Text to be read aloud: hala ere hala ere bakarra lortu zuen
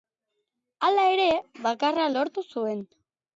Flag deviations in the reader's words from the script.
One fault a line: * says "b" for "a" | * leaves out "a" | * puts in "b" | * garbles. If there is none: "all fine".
* leaves out "hala ere"